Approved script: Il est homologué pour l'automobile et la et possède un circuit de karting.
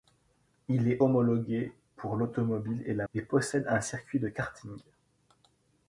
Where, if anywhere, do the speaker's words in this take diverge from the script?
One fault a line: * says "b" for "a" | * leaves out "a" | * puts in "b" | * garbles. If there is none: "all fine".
all fine